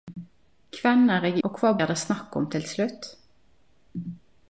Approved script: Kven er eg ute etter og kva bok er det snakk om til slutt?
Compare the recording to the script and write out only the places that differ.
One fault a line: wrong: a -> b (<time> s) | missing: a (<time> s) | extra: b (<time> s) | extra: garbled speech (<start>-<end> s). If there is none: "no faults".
missing: ute etter (1.4 s)
missing: bok (1.7 s)